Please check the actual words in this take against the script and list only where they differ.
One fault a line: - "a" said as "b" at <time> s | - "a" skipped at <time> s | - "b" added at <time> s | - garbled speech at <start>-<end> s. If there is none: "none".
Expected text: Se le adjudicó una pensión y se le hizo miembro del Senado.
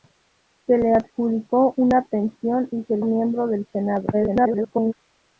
- "hizo" skipped at 3.0 s
- garbled speech at 4.1-4.9 s